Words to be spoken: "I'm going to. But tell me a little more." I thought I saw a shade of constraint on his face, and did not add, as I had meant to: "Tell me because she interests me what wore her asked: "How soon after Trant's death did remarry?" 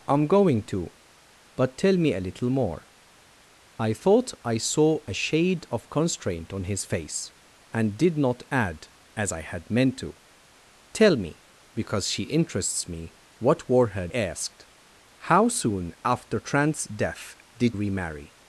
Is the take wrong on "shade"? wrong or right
right